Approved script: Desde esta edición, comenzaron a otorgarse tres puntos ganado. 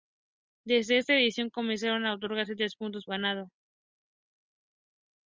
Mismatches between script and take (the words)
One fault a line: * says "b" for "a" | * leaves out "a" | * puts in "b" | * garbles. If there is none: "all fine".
all fine